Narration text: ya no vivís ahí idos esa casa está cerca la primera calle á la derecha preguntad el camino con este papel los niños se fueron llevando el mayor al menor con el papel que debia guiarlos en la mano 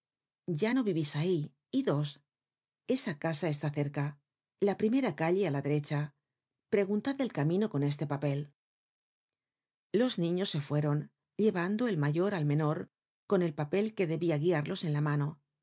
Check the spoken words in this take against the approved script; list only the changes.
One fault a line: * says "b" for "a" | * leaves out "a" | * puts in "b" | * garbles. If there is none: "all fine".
all fine